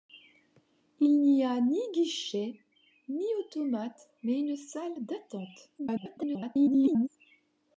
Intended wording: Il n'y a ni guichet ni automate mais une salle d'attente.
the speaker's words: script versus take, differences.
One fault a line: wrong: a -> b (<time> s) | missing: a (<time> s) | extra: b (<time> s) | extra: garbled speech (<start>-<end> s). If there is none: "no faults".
extra: garbled speech (5.8-7.1 s)